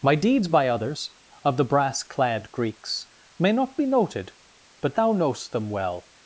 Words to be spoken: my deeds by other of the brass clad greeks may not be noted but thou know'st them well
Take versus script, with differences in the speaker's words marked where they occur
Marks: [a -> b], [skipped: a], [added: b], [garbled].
my deeds by [other -> others] of the brass clad greeks may not be noted but thou know'st them well